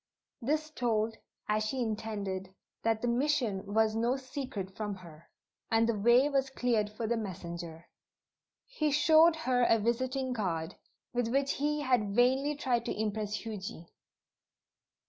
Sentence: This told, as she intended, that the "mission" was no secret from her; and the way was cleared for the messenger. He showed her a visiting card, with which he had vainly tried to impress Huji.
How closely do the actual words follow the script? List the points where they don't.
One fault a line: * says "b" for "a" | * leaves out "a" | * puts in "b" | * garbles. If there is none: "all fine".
all fine